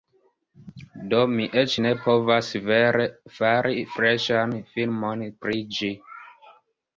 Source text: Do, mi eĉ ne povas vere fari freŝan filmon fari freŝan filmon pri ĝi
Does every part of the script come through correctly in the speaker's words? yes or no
no